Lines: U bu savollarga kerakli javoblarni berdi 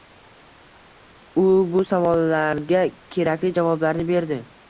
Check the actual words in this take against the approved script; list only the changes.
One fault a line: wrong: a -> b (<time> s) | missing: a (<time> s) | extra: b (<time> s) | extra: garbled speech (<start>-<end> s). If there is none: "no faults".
no faults